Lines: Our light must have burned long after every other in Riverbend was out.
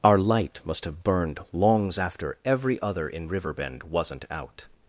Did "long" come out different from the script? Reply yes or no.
yes